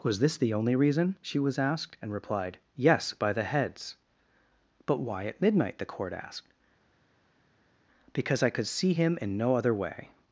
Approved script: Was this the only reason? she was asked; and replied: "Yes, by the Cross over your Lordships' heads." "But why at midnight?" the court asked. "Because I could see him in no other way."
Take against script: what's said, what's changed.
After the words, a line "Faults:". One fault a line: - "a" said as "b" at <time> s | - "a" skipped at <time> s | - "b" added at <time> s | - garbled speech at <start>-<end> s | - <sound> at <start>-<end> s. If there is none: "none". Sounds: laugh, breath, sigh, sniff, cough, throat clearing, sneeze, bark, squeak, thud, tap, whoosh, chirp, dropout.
Was this the only reason? she was asked; and replied: "Yes, by the' heads." "But why at midnight?" the court asked. "Because I could see him in no other way."
Faults:
- "Cross over your Lordships" skipped at 3.4 s